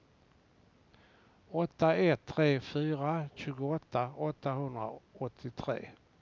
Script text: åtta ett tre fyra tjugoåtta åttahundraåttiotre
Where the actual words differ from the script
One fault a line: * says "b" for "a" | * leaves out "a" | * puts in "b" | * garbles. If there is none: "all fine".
all fine